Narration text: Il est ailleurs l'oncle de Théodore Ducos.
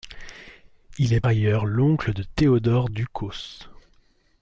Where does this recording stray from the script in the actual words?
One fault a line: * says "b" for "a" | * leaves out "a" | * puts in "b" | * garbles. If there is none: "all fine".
all fine